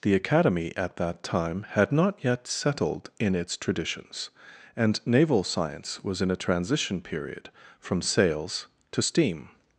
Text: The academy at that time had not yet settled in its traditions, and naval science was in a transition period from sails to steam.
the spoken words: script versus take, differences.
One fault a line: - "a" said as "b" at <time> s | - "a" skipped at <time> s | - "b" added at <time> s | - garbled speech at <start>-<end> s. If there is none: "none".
none